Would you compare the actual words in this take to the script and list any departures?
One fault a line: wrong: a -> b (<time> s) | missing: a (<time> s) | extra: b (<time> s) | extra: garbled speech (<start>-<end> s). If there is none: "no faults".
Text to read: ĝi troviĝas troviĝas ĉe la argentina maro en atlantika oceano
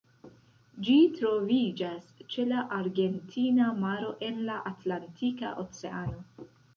missing: troviĝas (2.1 s)
extra: la (4.5 s)